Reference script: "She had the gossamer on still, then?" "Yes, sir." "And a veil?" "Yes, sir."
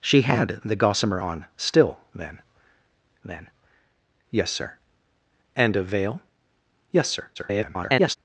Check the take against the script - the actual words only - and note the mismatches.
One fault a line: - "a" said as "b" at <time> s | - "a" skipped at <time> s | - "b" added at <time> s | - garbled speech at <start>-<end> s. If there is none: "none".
- "then" added at 3.2 s
- garbled speech at 7.4-8.2 s